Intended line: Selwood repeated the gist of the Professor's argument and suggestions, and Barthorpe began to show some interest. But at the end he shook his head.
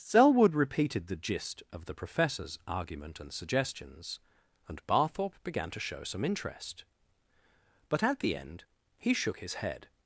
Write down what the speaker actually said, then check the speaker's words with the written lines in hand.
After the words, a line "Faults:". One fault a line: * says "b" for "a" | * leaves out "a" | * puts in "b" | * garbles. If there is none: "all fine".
Selwood repeated the gist of the Professor's argument and suggestions, and Barthorpe began to show some interest. But at the end he shook his head.
Faults:
all fine